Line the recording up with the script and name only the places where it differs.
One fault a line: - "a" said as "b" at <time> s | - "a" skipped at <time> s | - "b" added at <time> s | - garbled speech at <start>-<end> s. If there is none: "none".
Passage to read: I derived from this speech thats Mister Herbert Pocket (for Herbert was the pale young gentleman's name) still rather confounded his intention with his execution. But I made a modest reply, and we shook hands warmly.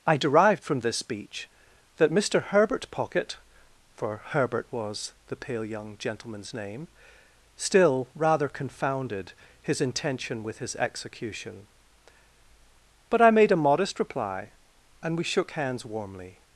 - "thats" said as "that" at 2.0 s